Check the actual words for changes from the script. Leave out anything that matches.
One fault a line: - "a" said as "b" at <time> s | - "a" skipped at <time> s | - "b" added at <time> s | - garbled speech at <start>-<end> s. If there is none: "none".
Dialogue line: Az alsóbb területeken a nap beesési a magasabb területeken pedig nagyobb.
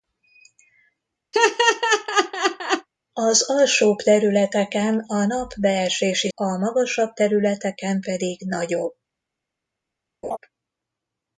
none